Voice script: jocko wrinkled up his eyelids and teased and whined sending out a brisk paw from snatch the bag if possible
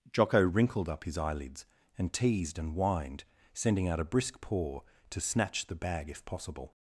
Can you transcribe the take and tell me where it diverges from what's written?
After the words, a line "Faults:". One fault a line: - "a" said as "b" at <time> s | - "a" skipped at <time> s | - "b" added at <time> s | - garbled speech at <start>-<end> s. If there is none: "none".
jocko wrinkled up his eyelids and teased and whined sending out a brisk paw to snatch the bag if possible
Faults:
- "from" said as "to" at 5.1 s